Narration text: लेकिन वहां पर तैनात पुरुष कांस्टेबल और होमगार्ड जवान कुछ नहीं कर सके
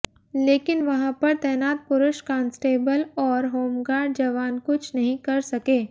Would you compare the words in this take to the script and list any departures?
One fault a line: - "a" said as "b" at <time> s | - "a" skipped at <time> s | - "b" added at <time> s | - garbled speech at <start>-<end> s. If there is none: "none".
none